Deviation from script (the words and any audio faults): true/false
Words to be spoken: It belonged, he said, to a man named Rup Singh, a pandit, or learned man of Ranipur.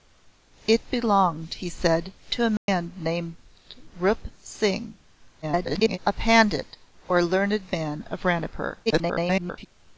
true